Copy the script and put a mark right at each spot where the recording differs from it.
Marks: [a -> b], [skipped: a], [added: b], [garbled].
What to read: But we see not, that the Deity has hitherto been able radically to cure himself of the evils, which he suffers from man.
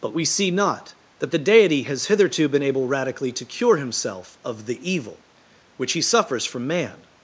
But we see not, that the Deity has hitherto been able radically to cure himself of the [evils, -> evil] which he suffers from man.